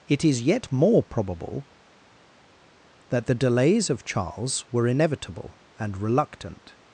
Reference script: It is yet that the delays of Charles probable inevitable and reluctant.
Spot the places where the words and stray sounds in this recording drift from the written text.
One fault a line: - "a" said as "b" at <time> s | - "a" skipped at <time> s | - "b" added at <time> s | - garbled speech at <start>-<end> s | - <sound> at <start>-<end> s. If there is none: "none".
- "more probable" added at 0.7 s
- "probable" said as "were" at 4.7 s